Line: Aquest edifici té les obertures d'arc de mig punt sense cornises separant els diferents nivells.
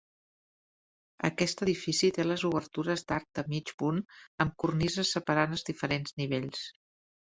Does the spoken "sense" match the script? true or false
false